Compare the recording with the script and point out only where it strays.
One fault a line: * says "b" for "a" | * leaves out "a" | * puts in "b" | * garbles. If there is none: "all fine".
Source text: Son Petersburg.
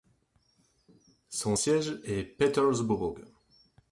* puts in "siège est"